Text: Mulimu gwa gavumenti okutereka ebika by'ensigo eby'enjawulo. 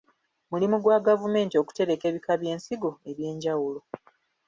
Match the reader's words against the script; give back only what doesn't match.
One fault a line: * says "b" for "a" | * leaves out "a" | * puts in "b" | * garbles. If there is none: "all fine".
all fine